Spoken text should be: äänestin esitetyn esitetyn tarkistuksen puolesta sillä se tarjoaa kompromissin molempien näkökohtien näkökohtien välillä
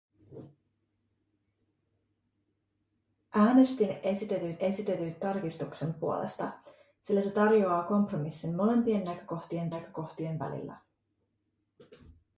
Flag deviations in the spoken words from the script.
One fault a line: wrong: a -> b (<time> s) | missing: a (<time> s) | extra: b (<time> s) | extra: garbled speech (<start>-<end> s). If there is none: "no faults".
no faults